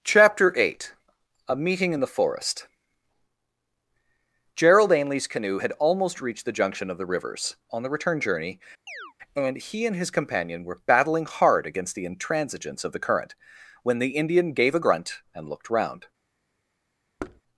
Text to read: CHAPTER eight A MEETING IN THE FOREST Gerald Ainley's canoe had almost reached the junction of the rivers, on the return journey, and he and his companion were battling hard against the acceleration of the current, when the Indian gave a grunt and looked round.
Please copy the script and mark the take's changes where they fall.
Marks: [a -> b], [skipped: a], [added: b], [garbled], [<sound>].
CHAPTER eight A MEETING IN THE FOREST Gerald Ainley's canoe had almost reached the junction of the rivers, on the return journey, [chirp] and he and his companion were battling hard against the [acceleration -> intransigence] of the current, when the Indian gave a grunt and looked round. [thud]